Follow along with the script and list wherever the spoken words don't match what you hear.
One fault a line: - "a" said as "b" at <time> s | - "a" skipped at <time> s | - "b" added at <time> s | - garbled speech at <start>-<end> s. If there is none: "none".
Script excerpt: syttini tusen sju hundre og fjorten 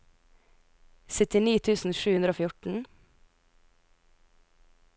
none